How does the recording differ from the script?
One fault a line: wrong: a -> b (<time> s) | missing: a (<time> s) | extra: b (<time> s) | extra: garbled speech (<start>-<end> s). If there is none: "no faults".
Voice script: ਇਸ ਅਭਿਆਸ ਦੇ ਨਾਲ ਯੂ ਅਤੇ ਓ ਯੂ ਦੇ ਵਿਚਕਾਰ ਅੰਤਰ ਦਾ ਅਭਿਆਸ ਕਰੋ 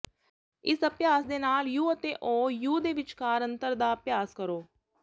no faults